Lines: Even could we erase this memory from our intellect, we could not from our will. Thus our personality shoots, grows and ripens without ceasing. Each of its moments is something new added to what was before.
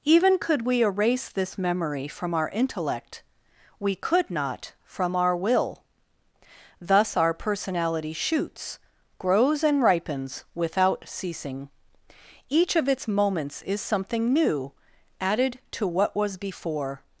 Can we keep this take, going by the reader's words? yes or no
yes